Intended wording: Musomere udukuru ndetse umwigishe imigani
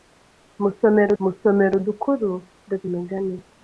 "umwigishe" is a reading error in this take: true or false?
true